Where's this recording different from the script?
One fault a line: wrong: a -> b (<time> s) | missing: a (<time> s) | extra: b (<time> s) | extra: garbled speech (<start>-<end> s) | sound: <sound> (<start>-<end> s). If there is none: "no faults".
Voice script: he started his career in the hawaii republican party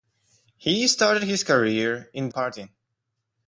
missing: the hawaii republican (2.3 s)